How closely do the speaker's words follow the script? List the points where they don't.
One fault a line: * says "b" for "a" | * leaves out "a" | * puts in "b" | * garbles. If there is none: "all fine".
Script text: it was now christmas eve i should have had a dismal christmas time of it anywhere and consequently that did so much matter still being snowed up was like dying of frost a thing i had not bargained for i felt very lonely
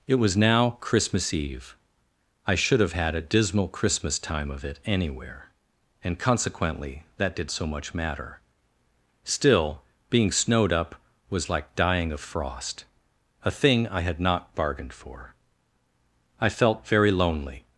all fine